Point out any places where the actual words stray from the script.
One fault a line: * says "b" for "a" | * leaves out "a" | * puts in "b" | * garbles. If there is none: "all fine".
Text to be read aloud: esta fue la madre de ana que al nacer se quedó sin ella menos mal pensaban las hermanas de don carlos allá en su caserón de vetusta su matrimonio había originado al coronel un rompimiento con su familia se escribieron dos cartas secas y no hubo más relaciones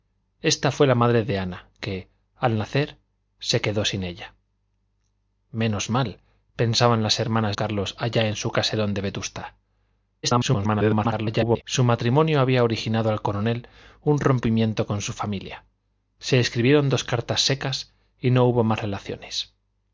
* leaves out "de don"
* garbles